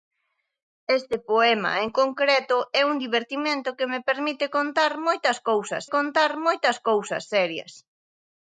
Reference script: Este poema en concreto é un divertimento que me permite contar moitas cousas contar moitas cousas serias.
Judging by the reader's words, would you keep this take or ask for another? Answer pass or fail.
pass